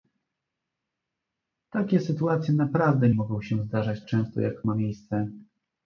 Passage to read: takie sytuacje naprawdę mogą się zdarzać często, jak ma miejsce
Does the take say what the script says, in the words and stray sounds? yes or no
yes